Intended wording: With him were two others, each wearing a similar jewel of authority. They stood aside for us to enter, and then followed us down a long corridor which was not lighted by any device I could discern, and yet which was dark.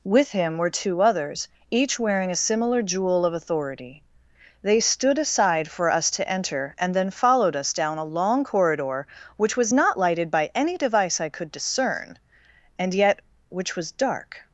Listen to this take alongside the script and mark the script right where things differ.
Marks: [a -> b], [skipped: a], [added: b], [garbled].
With him were two others, each wearing a similar jewel of authority. They stood aside for us to enter, and then followed us down a long corridor which was not lighted by any device I could discern, and yet which was dark.